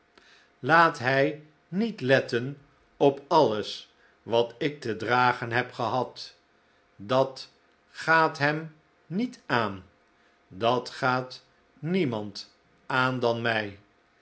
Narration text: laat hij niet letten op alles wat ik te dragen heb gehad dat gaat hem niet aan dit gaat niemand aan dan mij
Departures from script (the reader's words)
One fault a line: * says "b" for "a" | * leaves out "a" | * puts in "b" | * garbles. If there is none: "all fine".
* says "dat" for "dit"